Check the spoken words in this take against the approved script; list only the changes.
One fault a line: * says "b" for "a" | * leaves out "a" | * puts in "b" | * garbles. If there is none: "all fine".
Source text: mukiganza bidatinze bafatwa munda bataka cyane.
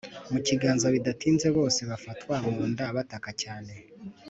* puts in "bose"